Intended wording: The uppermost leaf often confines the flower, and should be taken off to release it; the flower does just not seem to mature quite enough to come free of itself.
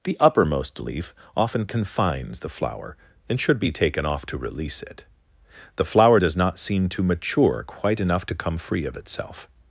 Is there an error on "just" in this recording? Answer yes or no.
yes